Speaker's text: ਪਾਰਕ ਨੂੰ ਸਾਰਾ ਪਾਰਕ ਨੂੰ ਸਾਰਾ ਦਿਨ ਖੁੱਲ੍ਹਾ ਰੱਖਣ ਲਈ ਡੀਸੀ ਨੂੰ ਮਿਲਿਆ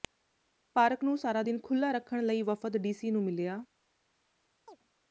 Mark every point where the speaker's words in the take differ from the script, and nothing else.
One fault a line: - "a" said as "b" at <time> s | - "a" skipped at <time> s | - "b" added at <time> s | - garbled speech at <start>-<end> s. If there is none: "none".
- "ਪਾਰਕ ਨੂੰ ਸਾਰਾ" skipped at 1.4 s
- "ਵਫ਼ਦ" added at 2.4 s